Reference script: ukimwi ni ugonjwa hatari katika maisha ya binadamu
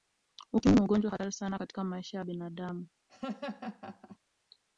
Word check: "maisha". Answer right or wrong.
right